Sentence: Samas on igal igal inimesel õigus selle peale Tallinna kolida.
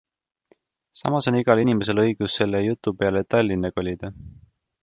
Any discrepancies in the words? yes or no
yes